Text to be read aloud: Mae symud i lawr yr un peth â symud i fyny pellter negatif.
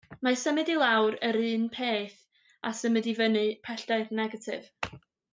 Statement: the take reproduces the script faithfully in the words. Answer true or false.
true